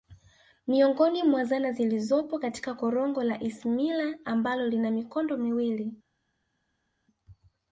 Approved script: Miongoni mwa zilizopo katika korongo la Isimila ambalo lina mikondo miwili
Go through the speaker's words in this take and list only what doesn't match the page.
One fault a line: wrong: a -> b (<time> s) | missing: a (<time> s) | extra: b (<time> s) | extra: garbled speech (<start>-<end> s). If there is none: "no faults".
extra: zana (1.4 s)